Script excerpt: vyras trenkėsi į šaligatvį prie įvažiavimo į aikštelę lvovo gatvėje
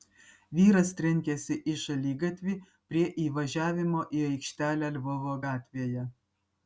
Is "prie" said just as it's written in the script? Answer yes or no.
yes